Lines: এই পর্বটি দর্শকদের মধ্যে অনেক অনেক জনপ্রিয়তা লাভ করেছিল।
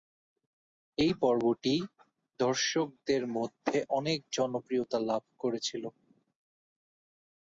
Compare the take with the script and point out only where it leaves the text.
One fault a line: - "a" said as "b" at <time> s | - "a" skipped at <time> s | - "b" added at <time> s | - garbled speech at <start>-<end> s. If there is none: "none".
- "অনেক" skipped at 4.2 s